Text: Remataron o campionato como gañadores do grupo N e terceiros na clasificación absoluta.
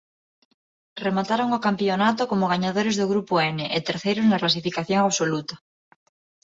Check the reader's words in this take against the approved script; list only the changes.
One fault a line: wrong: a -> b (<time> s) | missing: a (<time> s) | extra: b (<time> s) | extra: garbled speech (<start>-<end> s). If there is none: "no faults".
no faults